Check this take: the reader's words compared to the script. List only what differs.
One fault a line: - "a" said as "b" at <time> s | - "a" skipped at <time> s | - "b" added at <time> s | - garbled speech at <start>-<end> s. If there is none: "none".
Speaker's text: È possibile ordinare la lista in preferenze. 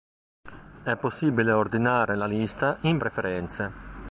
none